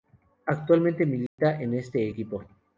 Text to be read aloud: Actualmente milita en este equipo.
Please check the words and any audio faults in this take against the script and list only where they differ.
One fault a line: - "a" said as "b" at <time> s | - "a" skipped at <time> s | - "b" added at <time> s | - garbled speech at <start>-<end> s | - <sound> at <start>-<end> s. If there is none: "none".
- dropout at 1.3-1.4 s